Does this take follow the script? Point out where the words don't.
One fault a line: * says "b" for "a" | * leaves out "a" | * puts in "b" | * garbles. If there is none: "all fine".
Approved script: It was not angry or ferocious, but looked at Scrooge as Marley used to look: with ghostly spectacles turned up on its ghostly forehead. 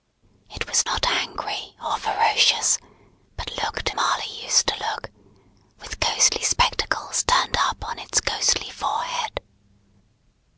* leaves out "at Scrooge as"